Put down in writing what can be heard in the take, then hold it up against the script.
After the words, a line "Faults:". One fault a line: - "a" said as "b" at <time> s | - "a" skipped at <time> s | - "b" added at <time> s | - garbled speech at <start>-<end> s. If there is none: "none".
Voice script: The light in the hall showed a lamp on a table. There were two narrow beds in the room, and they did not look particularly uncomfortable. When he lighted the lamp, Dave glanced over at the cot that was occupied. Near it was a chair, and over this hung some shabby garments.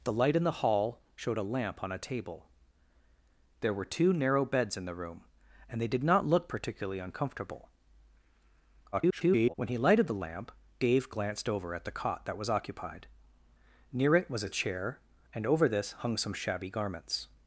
The light in the hall showed a lamp on a table. There were two narrow beds in the room, and they did not look particularly uncomfortable. [garbled] When he lighted the lamp, Dave glanced over at the cot that was occupied. Near it was a chair, and over this hung some shabby garments.
Faults:
- garbled speech at 8.9-9.5 s